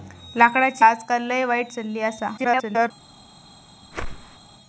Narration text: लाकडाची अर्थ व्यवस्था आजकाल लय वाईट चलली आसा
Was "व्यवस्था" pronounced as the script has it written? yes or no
no